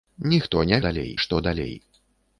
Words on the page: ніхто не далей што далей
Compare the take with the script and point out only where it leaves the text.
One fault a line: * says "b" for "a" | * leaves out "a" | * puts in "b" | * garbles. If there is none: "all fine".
all fine